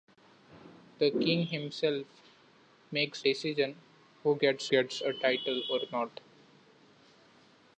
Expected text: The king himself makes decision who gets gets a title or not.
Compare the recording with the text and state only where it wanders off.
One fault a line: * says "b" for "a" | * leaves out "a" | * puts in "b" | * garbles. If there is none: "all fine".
all fine